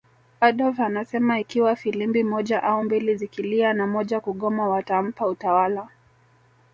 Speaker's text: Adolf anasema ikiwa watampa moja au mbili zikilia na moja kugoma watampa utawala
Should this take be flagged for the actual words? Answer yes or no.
yes